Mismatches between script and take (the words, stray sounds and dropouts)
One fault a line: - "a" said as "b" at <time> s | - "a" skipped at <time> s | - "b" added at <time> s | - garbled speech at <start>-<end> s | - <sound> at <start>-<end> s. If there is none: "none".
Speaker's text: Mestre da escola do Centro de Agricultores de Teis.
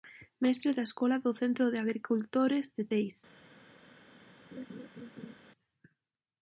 - laugh at 4.5-5.4 s